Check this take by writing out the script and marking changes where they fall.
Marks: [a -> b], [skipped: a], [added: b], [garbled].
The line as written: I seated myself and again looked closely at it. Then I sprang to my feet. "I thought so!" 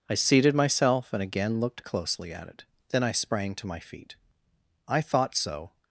I seated myself and again looked closely at it. Then I sprang to my feet. "I thought so!"